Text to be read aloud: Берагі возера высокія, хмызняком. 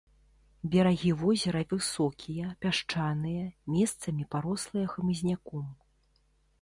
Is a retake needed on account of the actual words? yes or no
yes